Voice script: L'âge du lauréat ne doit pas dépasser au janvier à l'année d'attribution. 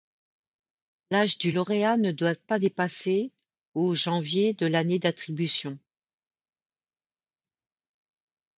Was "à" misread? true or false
true